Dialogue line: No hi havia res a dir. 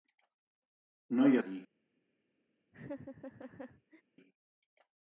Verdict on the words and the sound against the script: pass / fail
fail